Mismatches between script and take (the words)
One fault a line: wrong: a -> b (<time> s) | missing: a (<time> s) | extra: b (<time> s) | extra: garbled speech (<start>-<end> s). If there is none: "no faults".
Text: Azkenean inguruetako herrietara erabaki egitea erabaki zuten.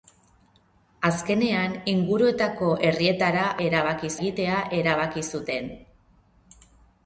no faults